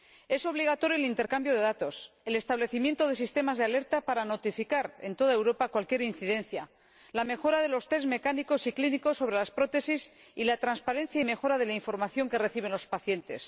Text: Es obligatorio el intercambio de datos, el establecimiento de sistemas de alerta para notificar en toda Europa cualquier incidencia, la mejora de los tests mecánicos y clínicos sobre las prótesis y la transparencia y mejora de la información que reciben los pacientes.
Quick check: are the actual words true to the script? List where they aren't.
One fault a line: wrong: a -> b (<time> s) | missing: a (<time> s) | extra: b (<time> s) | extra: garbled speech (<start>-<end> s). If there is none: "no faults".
no faults